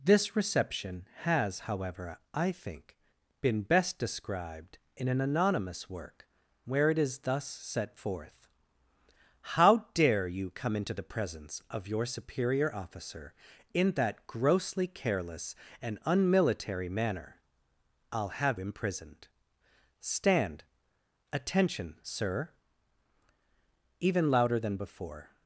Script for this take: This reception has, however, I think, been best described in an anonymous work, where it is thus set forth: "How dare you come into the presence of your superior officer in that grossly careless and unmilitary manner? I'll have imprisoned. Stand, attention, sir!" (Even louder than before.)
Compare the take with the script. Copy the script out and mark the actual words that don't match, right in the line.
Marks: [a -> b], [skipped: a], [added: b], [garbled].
This reception has, however, I think, been best described in an anonymous work, where it is thus set forth: "How dare you come into the presence of your superior officer in that grossly careless and unmilitary manner? I'll have imprisoned. Stand, attention, sir!" (Even louder than before.)